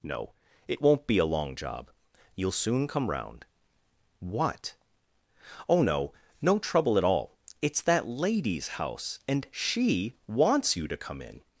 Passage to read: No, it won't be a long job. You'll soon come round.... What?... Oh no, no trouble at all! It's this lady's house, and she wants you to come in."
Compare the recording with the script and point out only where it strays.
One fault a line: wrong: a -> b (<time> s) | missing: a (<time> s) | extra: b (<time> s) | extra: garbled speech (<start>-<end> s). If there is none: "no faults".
wrong: this -> that (7.8 s)